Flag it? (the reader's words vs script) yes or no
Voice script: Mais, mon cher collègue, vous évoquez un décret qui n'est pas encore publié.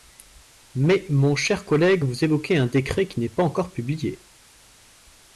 no